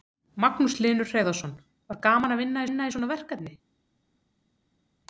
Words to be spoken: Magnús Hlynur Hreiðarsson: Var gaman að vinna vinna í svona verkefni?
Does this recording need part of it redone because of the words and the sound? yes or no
no